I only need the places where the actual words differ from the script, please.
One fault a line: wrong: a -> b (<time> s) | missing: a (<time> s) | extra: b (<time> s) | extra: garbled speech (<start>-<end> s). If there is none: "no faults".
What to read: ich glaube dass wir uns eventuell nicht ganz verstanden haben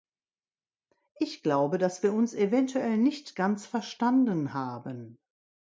no faults